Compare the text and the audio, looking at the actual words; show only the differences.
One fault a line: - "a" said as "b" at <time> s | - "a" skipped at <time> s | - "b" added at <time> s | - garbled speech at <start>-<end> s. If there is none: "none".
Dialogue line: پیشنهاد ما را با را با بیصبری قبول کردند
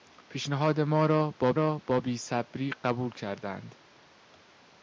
none